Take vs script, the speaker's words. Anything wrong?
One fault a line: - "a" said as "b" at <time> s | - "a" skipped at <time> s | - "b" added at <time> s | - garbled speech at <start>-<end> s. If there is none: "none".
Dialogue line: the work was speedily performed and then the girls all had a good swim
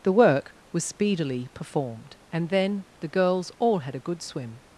none